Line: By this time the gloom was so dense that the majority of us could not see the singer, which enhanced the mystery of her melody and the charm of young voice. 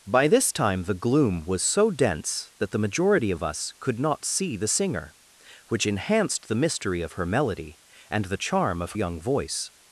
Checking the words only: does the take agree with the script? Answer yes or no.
yes